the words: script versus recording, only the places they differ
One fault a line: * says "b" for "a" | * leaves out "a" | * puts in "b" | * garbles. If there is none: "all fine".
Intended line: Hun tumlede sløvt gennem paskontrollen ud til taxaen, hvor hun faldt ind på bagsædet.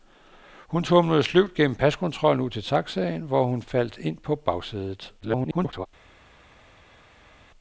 * garbles